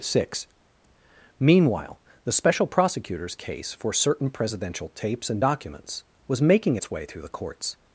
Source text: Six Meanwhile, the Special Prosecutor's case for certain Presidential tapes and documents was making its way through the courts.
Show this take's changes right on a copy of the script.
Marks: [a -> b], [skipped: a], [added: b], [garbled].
Six Meanwhile, the Special Prosecutor's case for certain Presidential tapes and documents was making its way through the courts.